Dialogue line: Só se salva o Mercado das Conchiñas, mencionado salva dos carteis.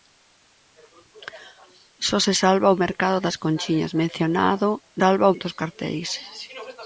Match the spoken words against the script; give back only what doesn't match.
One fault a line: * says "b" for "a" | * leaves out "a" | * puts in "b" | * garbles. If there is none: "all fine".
all fine